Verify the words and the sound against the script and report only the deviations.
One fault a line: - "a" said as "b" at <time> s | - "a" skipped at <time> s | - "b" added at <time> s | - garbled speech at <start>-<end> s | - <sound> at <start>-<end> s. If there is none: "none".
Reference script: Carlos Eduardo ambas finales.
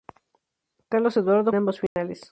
- dropout at 1.9-2.0 s